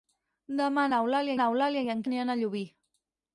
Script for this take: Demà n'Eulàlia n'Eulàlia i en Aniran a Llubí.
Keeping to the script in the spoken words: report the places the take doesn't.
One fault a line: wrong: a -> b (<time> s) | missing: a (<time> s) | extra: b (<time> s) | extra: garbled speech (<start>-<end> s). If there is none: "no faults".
no faults